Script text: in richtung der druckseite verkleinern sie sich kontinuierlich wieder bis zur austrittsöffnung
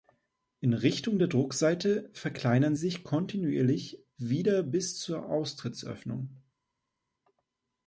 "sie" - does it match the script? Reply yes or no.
no